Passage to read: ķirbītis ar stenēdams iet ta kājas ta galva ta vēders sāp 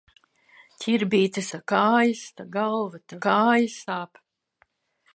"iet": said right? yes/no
no